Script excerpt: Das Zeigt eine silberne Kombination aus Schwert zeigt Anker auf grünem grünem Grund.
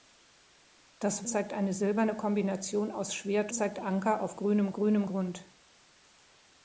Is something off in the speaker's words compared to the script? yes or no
no